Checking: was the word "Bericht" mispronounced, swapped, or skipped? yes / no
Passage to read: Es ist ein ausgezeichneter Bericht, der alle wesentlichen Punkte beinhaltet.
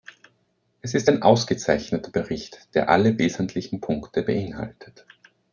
no